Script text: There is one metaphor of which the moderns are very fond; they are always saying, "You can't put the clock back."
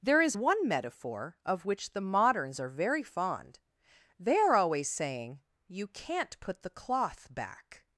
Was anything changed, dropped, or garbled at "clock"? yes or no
yes